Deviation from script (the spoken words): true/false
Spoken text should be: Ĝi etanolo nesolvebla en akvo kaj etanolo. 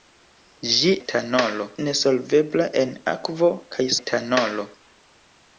false